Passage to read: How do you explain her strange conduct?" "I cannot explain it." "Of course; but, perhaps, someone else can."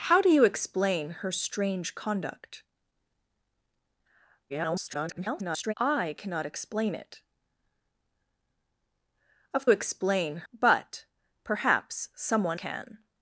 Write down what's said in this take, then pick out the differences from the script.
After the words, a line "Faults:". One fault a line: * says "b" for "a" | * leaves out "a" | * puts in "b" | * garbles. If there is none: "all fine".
How do you explain her strange conduct?" [garbled] "I cannot explain it." "Of explain; but, perhaps, someone can."
Faults:
* garbles
* says "explain" for "course"
* leaves out "else"